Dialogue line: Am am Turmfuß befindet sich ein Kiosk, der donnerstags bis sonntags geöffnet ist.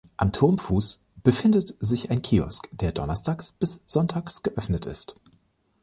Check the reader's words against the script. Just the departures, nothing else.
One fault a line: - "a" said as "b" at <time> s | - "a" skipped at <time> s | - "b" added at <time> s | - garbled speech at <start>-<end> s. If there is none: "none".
- "am" skipped at 0.3 s